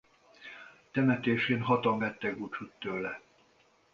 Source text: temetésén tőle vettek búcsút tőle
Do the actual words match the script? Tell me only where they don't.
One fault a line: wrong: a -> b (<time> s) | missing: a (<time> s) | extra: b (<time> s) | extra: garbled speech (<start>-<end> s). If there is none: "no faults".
wrong: tőle -> hatan (1.6 s)